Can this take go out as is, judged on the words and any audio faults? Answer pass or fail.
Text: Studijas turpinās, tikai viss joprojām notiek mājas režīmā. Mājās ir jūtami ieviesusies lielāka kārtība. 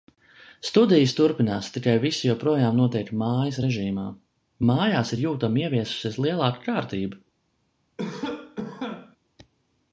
fail